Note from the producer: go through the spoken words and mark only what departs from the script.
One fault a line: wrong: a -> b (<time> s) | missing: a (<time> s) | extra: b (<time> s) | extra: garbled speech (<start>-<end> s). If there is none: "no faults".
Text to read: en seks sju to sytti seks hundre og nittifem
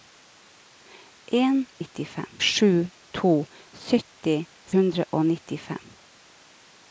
wrong: seks -> nittifem (1.8 s)
missing: seks (4.4 s)